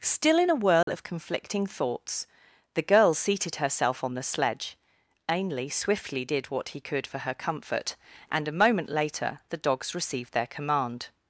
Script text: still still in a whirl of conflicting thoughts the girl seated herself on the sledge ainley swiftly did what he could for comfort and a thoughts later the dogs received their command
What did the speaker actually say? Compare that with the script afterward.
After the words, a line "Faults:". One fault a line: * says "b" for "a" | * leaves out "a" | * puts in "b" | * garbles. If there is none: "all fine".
still in a whirl of conflicting thoughts the girl seated herself on the sledge ainley swiftly did what he could for her comfort and a moment later the dogs received their command
Faults:
* leaves out "still"
* puts in "her"
* says "moment" for "thoughts"